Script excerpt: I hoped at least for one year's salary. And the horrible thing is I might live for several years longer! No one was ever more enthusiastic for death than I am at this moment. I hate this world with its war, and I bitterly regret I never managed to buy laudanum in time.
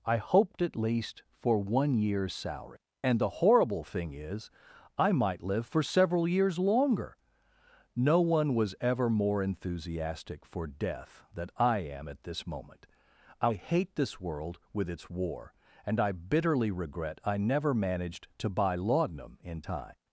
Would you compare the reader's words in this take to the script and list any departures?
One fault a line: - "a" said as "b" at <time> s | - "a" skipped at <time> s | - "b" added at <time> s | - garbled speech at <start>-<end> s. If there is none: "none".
none